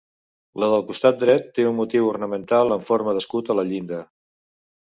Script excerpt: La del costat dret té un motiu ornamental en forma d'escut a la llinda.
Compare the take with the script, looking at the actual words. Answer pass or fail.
pass